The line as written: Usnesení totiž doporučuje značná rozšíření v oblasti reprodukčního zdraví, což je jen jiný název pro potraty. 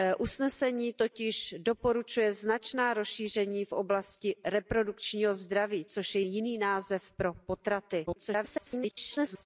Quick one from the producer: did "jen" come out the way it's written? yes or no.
no